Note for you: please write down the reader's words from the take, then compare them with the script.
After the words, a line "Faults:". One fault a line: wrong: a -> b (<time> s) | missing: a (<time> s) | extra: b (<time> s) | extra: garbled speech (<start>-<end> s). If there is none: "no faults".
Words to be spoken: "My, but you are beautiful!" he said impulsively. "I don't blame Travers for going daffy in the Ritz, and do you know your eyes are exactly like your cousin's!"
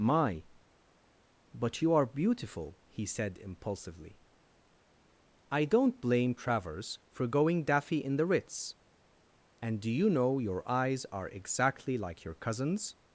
"My, but you are beautiful!" he said impulsively. "I don't blame Travers for going daffy in the Ritz, and do you know your eyes are exactly like your cousin's!"
Faults:
no faults